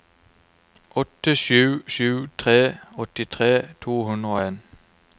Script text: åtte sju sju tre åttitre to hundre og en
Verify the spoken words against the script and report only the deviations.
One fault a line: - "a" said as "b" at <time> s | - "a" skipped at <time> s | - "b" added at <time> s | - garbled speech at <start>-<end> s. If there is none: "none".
none